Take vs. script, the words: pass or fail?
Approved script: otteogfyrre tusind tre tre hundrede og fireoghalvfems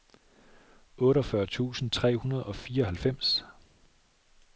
fail